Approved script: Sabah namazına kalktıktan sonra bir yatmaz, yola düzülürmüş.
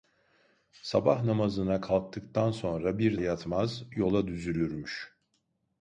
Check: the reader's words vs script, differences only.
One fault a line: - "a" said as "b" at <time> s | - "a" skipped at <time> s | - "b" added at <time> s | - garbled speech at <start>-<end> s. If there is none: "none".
none